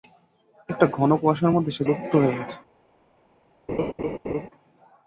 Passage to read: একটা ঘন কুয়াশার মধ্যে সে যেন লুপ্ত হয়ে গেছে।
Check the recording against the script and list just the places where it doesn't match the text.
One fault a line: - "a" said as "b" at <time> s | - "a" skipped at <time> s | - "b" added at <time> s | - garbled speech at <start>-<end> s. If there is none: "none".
- "যেন" skipped at 1.8 s